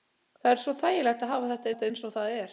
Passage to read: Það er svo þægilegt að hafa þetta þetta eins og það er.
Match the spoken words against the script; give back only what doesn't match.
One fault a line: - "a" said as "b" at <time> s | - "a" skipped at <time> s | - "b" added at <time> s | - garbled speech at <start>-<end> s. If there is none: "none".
none